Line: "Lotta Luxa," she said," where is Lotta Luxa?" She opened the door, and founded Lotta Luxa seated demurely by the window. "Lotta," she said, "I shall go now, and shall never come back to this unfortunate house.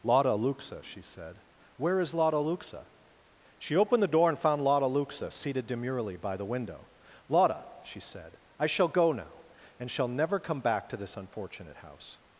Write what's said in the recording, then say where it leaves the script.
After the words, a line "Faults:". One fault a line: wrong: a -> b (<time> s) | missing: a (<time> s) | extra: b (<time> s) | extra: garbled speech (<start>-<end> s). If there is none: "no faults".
"Lotta Luxa," she said," where is Lotta Luxa?" She opened the door, and found Lotta Luxa seated demurely by the window. "Lotta," she said, "I shall go now, and shall never come back to this unfortunate house.
Faults:
wrong: founded -> found (4.4 s)